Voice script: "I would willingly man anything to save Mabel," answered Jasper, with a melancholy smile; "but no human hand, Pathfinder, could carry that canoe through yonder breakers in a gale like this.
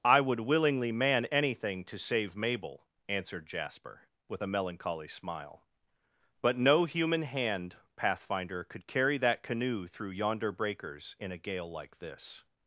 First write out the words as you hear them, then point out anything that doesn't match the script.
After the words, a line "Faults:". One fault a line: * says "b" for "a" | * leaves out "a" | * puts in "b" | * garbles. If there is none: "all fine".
"I would willingly man anything to save Mabel," answered Jasper, with a melancholy smile; "but no human hand, Pathfinder, could carry that canoe through yonder breakers in a gale like this.
Faults:
all fine